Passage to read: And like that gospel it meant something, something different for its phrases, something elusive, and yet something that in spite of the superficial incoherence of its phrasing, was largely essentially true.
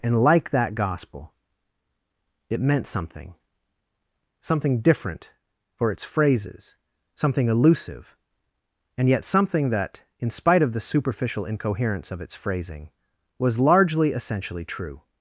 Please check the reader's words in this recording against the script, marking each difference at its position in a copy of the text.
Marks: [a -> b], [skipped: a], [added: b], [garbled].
And like that gospel it meant something, something different for its phrases, something elusive, and yet something that in spite of the superficial incoherence of its phrasing, was largely essentially true.